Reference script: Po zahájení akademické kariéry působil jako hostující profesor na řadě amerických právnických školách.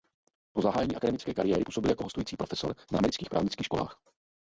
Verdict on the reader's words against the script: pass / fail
fail